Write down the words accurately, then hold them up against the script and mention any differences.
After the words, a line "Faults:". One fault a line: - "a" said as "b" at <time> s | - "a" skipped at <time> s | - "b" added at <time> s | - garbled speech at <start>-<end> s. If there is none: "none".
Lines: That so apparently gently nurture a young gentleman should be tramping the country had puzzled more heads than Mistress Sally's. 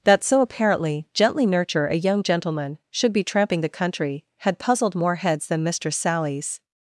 That so apparently gently nurture a young gentleman should be tramping the country had puzzled more heads than Mistress Sally's.
Faults:
none